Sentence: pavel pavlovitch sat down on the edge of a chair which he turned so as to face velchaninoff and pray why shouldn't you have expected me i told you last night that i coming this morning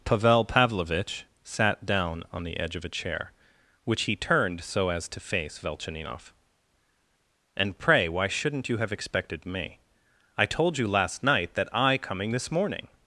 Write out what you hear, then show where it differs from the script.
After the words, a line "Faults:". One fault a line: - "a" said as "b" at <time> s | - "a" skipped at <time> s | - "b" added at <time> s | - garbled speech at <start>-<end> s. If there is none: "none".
pavel pavlovitch sat down on the edge of a chair which he turned so as to face velchaninoff and pray why shouldn't you have expected me i told you last night that i coming this morning
Faults:
none